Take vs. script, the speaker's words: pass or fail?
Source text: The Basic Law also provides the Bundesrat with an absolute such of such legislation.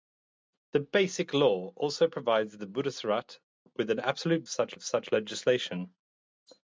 pass